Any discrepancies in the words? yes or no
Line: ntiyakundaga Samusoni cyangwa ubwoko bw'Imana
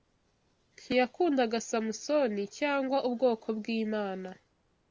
no